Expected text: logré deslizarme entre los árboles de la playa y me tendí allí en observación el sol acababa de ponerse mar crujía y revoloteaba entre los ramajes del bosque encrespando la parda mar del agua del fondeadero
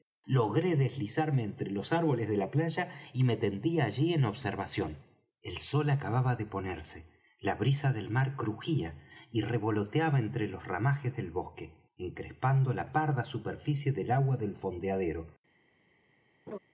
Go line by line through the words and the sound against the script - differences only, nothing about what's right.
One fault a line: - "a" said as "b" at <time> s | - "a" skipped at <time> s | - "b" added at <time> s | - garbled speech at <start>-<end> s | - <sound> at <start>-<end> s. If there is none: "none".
- "la brisa del" added at 7.4 s
- "mar" said as "superficie" at 13.2 s
- laugh at 16.5-16.6 s